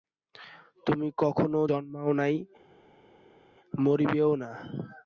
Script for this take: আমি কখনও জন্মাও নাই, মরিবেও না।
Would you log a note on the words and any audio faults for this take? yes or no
yes